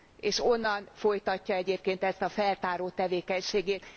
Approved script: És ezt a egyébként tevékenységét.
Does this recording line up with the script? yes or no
no